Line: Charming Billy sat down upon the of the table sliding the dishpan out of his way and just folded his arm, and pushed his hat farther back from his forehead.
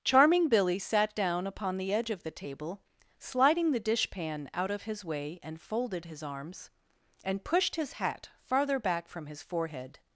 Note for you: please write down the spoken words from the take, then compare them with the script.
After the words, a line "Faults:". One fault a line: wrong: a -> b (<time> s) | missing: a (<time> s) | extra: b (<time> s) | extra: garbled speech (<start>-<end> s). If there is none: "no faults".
Charming Billy sat down upon the edge of the table sliding the dishpan out of his way and folded his arms, and pushed his hat farther back from his forehead.
Faults:
extra: edge (1.9 s)
missing: just (5.6 s)
wrong: arm -> arms (6.2 s)